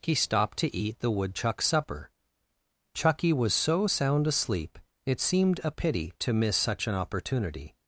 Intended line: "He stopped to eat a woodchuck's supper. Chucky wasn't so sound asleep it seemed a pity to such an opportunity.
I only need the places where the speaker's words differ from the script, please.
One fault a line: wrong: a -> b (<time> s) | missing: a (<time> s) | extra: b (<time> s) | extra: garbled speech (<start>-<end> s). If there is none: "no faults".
wrong: a -> the (1.0 s)
wrong: wasn't -> was (3.3 s)
extra: miss (6.3 s)